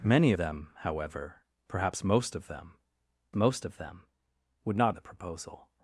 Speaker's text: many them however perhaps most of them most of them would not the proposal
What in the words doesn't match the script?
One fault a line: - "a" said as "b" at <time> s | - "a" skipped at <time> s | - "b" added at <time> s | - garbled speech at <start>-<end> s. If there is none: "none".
none